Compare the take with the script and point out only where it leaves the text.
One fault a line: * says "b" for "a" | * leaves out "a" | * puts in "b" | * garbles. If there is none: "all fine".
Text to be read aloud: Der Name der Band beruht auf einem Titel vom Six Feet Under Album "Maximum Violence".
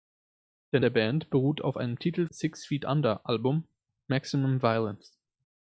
* leaves out "Name"
* leaves out "vom"